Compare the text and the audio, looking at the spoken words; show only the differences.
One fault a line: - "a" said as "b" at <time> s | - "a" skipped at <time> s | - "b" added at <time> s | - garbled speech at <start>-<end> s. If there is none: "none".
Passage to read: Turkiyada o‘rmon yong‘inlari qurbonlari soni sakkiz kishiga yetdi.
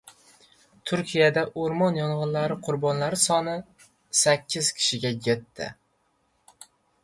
none